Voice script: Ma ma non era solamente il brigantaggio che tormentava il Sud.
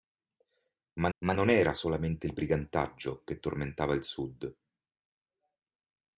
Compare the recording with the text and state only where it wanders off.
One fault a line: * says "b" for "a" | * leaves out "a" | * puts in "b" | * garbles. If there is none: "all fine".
all fine